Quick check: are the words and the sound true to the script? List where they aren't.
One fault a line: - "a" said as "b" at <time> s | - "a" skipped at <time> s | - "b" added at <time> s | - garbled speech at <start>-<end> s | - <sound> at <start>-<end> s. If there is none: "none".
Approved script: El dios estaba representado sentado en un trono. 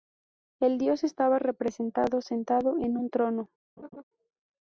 - laugh at 3.8-4.0 s